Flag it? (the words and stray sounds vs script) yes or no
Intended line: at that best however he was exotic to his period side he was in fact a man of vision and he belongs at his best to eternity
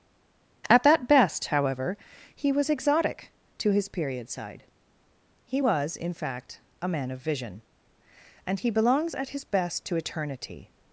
no